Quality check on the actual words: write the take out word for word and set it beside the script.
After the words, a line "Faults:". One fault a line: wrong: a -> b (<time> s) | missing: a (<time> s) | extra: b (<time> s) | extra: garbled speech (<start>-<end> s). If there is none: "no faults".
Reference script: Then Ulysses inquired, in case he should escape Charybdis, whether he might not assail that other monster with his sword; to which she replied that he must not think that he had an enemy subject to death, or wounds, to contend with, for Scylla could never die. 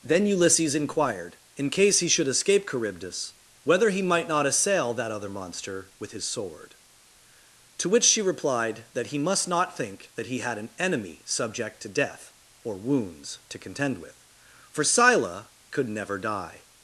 Then Ulysses inquired, in case he should escape Charybdis, whether he might not assail that other monster with his sword; to which she replied that he must not think that he had an enemy subject to death, or wounds, to contend with, for Scylla could never die.
Faults:
no faults